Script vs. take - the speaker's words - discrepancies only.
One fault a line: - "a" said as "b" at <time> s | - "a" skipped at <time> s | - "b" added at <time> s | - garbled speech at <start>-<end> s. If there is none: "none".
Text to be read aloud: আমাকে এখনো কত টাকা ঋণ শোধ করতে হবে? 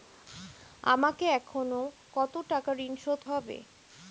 - "করতে" skipped at 3.2 s